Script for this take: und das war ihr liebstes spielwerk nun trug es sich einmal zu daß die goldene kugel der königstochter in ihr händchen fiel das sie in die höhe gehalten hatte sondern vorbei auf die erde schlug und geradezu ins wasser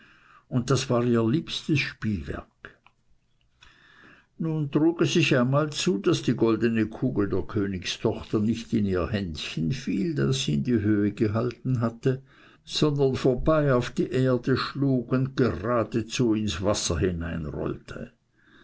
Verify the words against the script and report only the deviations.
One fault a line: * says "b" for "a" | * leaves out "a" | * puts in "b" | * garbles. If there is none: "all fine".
* puts in "nicht"